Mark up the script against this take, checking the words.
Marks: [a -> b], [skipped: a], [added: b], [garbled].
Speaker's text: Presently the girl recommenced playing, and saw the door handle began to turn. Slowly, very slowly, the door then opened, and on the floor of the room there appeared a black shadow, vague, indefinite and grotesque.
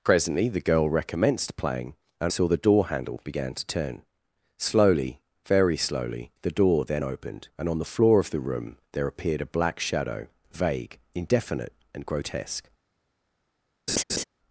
Presently the girl recommenced playing, and saw the door handle began to turn. Slowly, very slowly, the door then opened, and on the floor of the room there appeared a black shadow, vague, indefinite and grotesque.